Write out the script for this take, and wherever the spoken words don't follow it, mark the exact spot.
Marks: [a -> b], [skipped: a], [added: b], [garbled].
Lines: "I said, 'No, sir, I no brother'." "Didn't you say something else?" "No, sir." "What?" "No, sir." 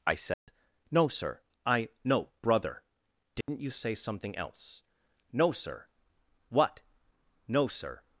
"I said, 'No, sir, I no brother'." "Didn't you say something else?" "No, sir." "What?" "No, sir."